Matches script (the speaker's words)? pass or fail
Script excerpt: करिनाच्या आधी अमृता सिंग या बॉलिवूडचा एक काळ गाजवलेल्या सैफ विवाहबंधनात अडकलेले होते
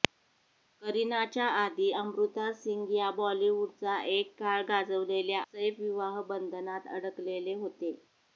pass